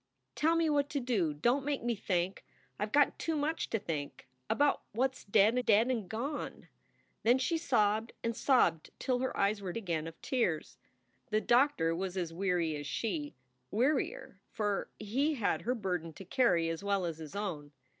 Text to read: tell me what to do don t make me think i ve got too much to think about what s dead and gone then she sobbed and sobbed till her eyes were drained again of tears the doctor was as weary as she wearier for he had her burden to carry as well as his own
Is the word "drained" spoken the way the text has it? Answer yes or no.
no